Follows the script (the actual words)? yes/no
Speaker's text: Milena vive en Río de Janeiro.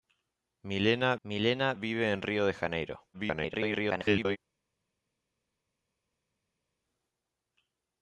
no